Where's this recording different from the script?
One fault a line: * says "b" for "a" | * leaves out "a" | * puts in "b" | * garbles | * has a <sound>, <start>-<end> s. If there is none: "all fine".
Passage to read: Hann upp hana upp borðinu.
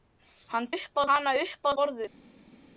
all fine